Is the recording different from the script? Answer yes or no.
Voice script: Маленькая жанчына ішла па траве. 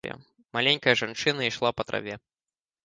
no